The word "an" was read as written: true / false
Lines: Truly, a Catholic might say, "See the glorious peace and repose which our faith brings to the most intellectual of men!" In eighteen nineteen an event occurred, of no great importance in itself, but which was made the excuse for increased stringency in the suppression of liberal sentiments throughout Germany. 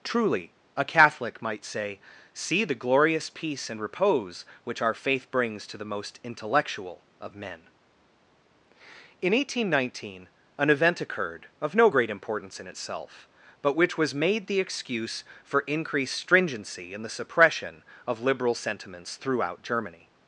true